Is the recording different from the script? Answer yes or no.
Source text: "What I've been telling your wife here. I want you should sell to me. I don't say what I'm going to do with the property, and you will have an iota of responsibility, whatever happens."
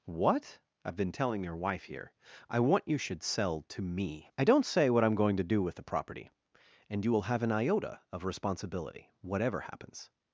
no